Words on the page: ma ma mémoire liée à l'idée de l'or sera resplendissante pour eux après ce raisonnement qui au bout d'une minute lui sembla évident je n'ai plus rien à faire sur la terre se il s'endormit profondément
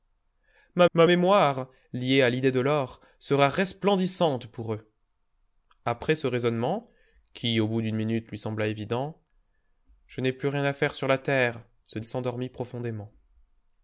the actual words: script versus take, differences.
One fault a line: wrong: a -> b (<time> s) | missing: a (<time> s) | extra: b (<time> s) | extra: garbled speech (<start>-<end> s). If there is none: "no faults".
no faults